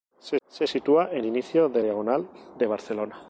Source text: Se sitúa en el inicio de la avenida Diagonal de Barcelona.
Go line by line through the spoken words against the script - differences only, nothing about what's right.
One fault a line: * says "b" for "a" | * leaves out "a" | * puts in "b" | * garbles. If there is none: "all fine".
* puts in "se"
* leaves out "el"
* leaves out "la avenida"